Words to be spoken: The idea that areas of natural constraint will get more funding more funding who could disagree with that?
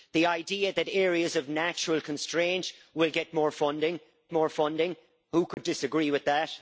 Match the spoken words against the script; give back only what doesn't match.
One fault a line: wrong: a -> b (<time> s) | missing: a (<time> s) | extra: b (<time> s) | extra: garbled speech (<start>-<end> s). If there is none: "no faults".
no faults